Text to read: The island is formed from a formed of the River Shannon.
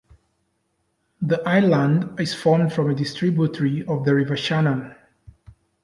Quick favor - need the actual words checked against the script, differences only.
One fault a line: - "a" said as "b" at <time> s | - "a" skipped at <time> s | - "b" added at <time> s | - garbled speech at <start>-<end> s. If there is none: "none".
- "formed" said as "distributary" at 3.0 s